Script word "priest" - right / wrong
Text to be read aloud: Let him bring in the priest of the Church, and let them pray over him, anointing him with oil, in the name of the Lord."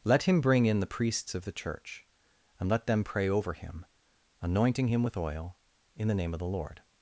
wrong